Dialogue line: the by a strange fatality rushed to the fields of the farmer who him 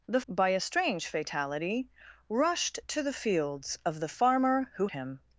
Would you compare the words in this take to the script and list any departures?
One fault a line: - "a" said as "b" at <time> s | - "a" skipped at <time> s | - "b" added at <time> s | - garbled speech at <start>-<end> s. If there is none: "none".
none